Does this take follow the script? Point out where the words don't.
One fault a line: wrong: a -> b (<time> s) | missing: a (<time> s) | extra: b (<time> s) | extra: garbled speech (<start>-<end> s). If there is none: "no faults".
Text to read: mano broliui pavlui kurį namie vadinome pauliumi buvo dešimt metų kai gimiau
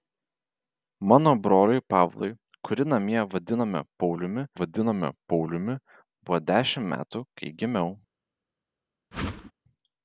extra: vadinome pauliumi (4.6 s)